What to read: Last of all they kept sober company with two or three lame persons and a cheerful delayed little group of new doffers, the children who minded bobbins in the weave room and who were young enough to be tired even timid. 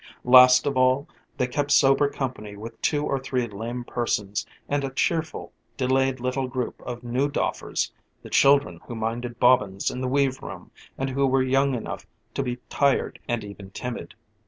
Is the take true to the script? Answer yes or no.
no